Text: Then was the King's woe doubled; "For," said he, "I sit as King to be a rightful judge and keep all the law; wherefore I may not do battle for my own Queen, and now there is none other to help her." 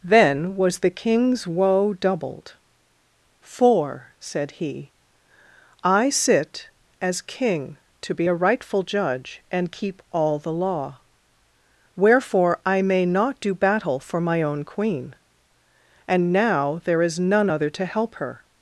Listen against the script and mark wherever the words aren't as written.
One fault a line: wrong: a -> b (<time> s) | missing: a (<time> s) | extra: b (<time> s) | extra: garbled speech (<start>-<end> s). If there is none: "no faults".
no faults